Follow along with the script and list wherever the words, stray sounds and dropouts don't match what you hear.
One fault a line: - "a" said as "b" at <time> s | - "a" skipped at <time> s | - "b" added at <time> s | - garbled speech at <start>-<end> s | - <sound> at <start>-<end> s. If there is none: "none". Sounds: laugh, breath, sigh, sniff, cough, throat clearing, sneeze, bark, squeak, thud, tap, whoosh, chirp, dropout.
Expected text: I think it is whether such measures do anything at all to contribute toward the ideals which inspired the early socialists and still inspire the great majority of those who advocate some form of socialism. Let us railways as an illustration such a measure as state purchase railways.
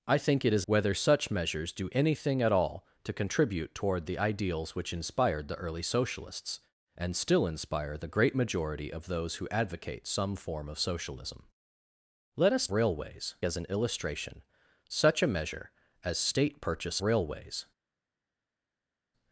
none